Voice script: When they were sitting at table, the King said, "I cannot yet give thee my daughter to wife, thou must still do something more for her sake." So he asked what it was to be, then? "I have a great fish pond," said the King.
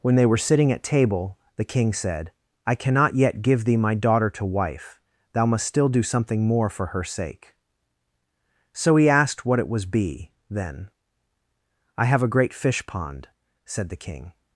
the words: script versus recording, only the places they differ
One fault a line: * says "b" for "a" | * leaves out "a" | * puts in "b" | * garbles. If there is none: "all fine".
* leaves out "to"